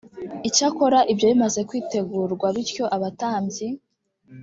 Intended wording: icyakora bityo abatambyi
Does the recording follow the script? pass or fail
fail